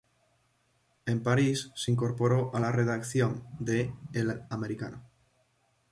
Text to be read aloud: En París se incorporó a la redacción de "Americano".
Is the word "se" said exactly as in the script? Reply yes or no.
yes